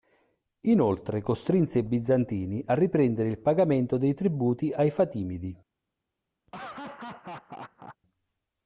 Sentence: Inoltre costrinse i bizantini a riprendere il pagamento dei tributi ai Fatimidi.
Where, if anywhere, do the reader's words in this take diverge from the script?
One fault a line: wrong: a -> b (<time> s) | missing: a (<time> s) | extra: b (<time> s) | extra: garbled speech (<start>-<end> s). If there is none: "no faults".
no faults